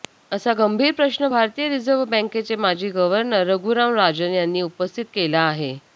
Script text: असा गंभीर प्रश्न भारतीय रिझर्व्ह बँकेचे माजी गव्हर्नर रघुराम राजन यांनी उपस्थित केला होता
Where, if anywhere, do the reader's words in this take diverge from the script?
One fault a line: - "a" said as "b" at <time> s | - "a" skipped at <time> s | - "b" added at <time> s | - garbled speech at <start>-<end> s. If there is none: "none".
- "होता" said as "आहे" at 5.4 s